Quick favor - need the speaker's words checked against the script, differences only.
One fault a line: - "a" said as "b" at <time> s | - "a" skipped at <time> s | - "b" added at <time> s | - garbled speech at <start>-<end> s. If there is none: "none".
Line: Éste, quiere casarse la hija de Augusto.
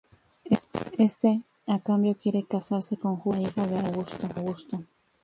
- "a cambio" added at 1.7 s
- "con Julia" added at 3.0 s